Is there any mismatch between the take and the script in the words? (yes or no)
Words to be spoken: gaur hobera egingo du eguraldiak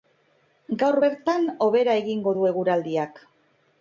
yes